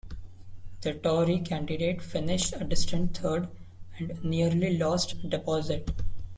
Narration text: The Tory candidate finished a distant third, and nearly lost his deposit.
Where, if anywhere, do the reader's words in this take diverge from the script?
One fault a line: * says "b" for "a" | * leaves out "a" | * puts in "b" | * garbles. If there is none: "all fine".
* leaves out "his"